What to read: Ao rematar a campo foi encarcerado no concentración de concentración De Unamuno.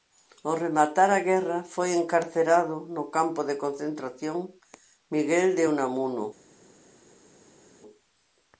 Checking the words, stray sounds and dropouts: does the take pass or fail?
fail